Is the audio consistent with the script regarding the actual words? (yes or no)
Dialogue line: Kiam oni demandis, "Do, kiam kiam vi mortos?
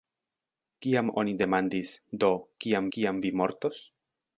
yes